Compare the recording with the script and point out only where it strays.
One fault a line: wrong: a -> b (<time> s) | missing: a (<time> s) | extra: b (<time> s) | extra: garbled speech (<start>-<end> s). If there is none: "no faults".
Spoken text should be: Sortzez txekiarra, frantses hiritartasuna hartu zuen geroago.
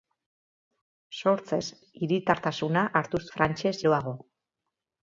missing: txekiarra frantses (1.6 s)
wrong: zuen -> frantses (3.4 s)